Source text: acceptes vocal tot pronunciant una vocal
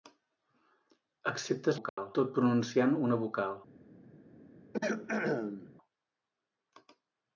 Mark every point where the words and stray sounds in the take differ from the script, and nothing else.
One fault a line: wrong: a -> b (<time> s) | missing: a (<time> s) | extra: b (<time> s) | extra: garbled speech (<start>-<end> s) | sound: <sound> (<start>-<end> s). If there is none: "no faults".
sound: dropout (1.9-2.0 s)
sound: throat clearing (4.7-5.7 s)